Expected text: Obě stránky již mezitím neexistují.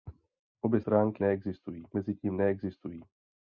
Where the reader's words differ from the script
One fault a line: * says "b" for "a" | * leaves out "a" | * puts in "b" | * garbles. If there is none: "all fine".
* says "neexistují" for "již"